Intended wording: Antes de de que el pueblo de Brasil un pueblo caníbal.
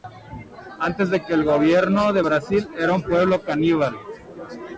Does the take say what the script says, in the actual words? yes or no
no